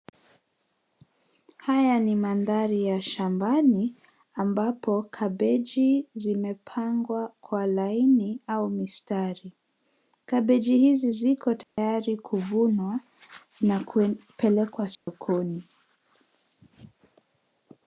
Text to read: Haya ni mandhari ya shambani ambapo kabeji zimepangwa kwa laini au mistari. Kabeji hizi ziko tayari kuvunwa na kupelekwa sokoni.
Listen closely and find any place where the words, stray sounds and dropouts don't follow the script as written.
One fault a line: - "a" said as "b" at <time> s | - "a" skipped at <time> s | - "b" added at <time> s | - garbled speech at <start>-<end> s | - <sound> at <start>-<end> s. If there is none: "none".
- dropout at 11.6-11.8 s
- dropout at 14.9-15.1 s